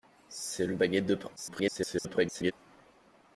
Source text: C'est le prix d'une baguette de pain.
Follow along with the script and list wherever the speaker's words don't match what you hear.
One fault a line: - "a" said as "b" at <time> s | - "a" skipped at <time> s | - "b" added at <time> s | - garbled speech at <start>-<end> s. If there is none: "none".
- "prix d'une" skipped at 0.8 s
- garbled speech at 1.4-2.5 s